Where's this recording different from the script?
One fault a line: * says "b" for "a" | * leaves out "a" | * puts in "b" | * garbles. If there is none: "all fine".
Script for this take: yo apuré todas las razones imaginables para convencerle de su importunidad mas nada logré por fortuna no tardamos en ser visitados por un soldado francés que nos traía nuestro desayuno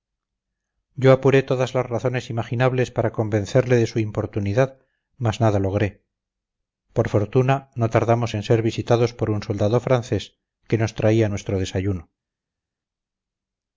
all fine